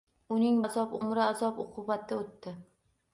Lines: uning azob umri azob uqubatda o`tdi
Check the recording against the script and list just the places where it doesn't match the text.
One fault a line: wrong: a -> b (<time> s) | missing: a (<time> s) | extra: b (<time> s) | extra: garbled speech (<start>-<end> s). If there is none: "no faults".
no faults